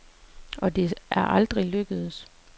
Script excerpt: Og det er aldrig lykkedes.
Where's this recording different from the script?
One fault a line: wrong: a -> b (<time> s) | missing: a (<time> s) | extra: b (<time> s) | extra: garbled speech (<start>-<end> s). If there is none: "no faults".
no faults